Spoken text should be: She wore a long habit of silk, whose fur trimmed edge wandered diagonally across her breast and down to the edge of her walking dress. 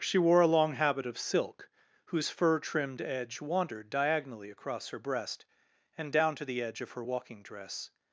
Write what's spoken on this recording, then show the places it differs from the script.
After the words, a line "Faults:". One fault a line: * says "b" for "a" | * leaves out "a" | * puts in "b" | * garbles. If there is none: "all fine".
She wore a long habit of silk, whose fur trimmed edge wandered diagonally across her breast and down to the edge of her walking dress.
Faults:
all fine